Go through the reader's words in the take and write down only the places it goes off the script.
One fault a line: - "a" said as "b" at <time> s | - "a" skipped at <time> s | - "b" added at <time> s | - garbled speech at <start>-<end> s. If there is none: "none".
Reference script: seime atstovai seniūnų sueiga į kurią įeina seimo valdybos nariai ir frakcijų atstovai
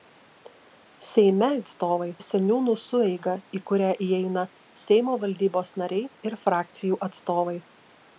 none